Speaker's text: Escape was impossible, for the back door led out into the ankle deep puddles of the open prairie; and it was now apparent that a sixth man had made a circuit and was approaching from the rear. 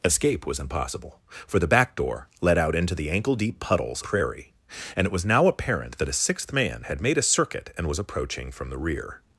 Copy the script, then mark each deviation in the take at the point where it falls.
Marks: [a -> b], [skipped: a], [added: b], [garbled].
Escape was impossible, for the back door led out into the ankle deep puddles [skipped: of the open] prairie; and it was now apparent that a sixth man had made a circuit and was approaching from the rear.